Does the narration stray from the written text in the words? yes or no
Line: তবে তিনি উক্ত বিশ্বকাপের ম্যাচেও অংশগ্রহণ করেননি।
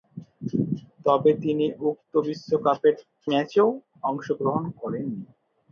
no